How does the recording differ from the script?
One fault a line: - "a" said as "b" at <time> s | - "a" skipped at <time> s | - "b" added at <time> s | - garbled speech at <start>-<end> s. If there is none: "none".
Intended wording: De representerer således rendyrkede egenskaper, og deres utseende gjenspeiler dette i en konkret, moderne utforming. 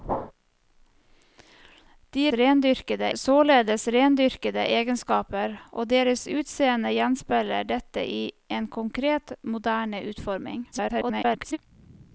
- "representerer" said as "rendyrkede" at 2.3 s
- garbled speech at 10.7-11.6 s